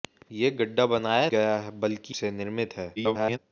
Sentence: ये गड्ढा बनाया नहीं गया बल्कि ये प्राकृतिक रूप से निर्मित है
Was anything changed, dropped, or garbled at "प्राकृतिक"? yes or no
yes